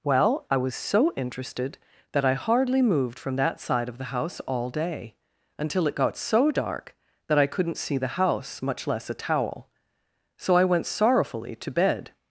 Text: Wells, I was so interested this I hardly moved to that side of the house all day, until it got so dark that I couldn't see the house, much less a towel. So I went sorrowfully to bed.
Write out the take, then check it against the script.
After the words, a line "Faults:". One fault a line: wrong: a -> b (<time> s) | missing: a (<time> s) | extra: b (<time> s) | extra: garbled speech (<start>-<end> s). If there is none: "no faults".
Well, I was so interested that I hardly moved from that side of the house all day, until it got so dark that I couldn't see the house, much less a towel. So I went sorrowfully to bed.
Faults:
wrong: Wells -> Well (0.0 s)
wrong: this -> that (2.1 s)
wrong: to -> from (3.2 s)